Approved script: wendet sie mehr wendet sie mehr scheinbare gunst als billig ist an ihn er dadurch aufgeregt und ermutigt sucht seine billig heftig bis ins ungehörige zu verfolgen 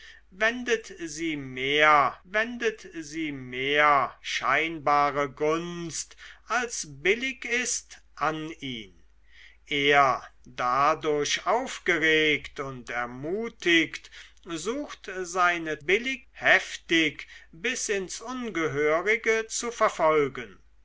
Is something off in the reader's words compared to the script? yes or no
no